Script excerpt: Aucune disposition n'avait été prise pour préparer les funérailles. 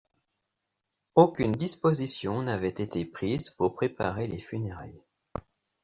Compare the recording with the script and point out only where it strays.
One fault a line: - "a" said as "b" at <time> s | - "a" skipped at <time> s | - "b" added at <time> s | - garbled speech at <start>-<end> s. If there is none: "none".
none